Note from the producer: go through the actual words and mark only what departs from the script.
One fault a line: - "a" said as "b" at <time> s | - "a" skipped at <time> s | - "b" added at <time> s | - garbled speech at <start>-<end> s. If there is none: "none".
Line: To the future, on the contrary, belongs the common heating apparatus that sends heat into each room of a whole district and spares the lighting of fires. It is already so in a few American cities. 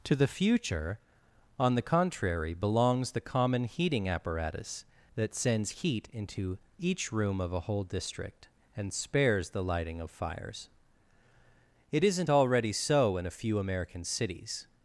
- "is" said as "isn't" at 12.0 s